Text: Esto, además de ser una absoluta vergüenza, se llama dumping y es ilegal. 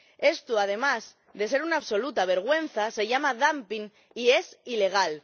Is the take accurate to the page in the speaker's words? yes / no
yes